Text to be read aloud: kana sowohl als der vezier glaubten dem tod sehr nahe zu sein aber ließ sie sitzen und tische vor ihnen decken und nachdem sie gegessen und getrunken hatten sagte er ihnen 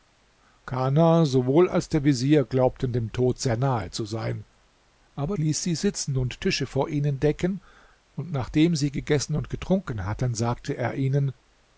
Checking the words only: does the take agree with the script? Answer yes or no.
yes